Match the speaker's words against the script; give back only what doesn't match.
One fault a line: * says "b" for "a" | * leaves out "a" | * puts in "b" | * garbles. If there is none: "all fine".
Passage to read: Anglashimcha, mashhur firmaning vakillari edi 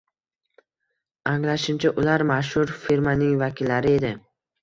* puts in "ular"